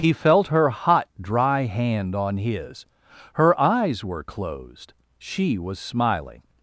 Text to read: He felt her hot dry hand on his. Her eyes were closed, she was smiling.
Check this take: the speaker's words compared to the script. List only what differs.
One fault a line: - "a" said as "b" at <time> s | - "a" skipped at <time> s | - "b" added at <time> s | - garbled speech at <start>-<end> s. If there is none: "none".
none